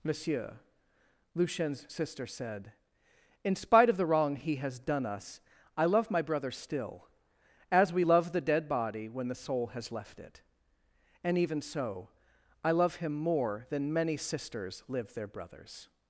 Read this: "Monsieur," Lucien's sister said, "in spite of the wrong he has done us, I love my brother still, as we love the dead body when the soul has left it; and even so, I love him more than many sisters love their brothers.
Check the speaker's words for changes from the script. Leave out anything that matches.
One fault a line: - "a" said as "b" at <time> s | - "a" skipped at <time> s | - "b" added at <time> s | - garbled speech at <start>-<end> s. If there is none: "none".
- "love" said as "live" at 14.9 s